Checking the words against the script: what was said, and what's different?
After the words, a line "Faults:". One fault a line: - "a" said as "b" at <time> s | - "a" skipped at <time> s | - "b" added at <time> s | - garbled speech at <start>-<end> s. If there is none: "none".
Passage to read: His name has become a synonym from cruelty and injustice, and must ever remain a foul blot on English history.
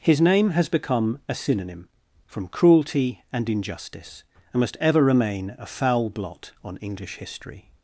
His name has become a synonym from cruelty and injustice, and must ever remain a foul blot on English history.
Faults:
none